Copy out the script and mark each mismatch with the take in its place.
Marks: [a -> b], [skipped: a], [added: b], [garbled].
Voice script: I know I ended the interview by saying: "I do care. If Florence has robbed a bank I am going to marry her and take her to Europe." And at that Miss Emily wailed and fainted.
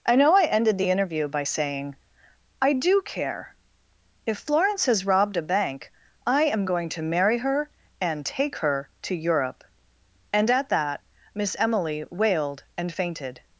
I know I ended the interview by saying: "I do care. If Florence has robbed a bank I am going to marry her and take her to Europe." And at that Miss Emily wailed and fainted.